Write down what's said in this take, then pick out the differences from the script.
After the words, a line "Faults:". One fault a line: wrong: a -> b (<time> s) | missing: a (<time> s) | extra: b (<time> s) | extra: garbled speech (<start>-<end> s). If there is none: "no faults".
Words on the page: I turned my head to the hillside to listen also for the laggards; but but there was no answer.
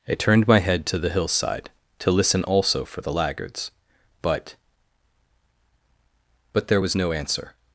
I turned my head to the hillside to listen also for the laggards; but but there was no answer.
Faults:
no faults